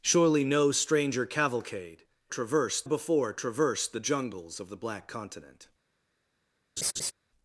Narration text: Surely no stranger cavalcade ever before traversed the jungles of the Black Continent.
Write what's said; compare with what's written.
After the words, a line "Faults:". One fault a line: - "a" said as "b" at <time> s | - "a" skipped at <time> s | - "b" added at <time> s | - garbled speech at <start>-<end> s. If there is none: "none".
Surely no stranger cavalcade traversed before traversed the jungles of the Black Continent.
Faults:
- "ever" said as "traversed" at 2.3 s